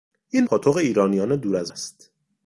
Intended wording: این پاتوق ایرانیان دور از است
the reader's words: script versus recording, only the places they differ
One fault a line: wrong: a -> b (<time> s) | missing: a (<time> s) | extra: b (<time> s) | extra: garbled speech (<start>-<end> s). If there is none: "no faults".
no faults